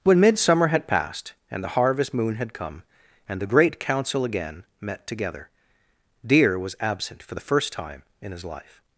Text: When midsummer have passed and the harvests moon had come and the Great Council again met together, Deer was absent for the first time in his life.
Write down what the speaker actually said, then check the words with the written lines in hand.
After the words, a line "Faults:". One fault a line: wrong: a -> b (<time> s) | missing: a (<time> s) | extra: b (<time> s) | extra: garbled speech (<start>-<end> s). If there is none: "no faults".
When midsummer had passed and the harvest moon had come and the Great Council again met together, Deer was absent for the first time in his life.
Faults:
wrong: have -> had (0.7 s)
wrong: harvests -> harvest (1.8 s)